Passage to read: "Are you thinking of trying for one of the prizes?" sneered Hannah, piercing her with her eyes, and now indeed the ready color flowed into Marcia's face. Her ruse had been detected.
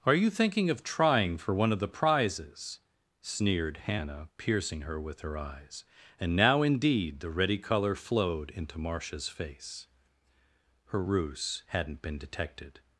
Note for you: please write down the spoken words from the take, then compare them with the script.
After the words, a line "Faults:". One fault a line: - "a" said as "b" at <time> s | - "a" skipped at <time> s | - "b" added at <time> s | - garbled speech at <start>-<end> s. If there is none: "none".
"Are you thinking of trying for one of the prizes?" sneered Hannah, piercing her with her eyes, and now indeed the ready color flowed into Marcia's face. Her ruse hadn't been detected.
Faults:
- "had" said as "hadn't" at 11.7 s